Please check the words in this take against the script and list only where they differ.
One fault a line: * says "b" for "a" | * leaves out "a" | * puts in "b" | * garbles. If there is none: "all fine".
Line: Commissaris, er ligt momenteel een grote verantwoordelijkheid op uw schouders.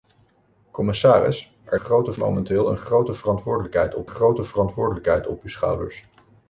* says "grote" for "ligt"
* puts in "grote verantwoordelijkheid op"